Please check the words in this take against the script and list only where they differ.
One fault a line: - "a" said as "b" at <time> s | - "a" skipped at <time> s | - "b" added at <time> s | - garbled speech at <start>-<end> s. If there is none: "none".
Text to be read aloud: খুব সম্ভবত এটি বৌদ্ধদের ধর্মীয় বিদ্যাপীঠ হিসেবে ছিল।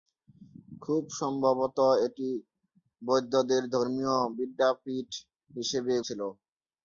none